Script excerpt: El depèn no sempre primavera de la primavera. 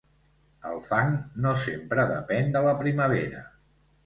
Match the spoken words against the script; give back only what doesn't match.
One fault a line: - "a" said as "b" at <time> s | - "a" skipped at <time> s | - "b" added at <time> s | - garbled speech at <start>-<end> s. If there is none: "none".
- "depèn" said as "fang" at 0.8 s
- "primavera" said as "depèn" at 2.1 s